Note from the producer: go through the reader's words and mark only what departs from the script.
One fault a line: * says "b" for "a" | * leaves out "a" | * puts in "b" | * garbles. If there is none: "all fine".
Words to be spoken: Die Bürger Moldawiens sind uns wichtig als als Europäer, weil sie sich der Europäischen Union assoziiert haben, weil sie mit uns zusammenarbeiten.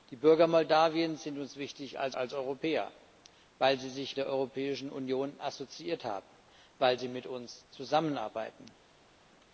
all fine